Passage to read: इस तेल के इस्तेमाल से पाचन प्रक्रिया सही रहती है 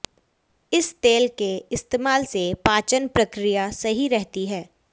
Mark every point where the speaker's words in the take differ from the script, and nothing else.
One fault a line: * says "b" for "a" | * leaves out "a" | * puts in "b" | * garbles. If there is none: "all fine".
all fine